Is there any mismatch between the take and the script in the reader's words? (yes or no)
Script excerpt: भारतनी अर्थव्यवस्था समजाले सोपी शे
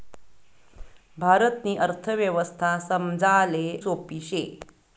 no